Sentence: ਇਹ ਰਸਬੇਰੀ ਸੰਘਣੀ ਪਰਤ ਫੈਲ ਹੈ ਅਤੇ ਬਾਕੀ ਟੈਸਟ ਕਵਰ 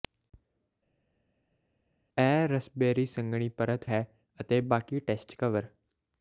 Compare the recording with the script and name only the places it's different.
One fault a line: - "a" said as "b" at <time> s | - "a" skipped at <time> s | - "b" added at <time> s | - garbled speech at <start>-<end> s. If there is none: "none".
- "ਫੈਲ" skipped at 3.8 s